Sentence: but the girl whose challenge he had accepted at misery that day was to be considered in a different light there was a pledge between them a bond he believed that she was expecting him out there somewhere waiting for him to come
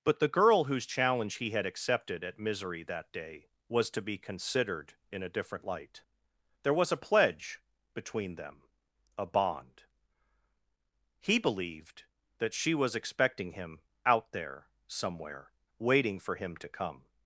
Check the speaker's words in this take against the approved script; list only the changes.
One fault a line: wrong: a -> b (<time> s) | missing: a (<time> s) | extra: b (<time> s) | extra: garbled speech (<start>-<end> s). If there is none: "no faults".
no faults